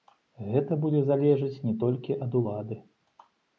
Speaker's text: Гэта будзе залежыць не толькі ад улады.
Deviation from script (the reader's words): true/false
false